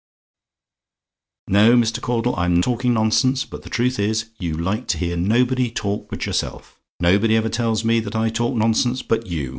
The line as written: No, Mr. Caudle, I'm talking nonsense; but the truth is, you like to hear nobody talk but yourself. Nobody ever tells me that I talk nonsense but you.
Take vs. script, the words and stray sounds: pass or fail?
pass